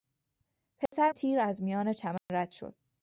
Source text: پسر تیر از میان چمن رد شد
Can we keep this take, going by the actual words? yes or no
yes